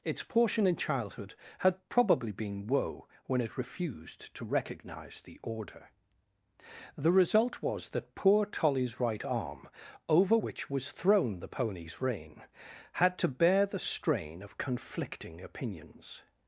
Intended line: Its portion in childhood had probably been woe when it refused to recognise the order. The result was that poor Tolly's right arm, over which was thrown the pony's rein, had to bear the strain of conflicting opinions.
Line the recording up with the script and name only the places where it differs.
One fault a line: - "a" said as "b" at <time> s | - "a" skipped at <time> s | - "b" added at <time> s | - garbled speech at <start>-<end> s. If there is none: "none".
none